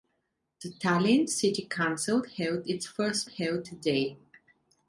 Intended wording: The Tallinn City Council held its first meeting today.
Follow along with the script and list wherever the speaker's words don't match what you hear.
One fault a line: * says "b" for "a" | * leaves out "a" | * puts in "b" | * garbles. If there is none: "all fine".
* says "held" for "meeting"